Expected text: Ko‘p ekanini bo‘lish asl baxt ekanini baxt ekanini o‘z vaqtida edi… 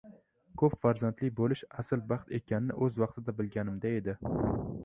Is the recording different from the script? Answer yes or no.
yes